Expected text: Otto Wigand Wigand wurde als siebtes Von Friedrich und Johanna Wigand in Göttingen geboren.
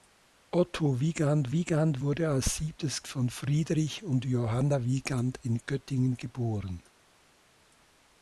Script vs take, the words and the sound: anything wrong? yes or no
no